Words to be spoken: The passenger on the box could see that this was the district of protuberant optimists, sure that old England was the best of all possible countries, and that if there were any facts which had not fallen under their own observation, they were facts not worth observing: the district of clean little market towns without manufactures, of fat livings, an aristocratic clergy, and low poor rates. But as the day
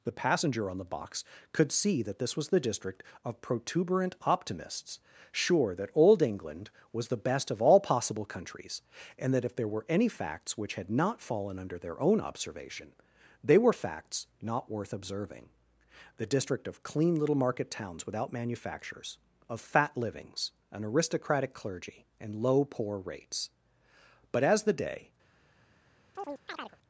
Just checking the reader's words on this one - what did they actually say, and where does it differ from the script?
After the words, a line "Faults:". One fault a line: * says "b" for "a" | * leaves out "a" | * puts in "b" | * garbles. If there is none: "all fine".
The passenger on the box could see that this was the district of protuberant optimists, sure that old England was the best of all possible countries, and that if there were any facts which had not fallen under their own observation, they were facts not worth observing: the district of clean little market towns without manufactures, of fat livings, an aristocratic clergy, and low poor rates. But as the day
Faults:
all fine